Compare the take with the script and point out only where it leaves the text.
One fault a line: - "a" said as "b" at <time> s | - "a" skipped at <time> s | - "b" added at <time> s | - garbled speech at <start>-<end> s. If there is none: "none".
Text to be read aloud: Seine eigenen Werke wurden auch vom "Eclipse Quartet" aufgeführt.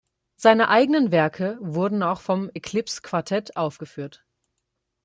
none